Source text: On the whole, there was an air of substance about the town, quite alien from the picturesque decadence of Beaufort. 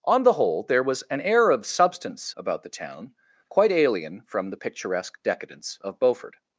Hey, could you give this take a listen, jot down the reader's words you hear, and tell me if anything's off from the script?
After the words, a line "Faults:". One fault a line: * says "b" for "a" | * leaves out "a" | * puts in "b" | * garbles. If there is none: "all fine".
On the whole, there was an air of substance about the town, quite alien from the picturesque decadence of Beaufort.
Faults:
all fine